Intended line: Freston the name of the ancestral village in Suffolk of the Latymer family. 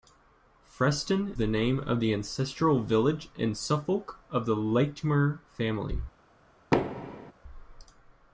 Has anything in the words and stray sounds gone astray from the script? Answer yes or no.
yes